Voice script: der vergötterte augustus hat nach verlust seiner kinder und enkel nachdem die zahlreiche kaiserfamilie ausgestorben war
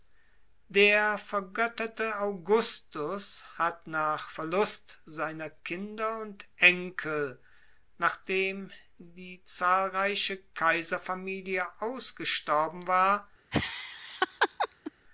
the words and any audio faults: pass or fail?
fail